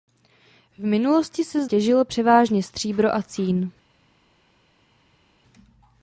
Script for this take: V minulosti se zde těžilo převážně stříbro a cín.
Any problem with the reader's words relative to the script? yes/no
yes